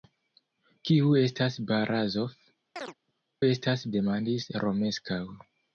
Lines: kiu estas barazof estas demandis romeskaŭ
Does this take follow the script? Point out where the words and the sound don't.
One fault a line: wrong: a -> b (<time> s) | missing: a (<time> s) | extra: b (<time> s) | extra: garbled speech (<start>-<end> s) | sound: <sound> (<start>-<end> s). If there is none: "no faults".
sound: chirp (2.8-2.9 s)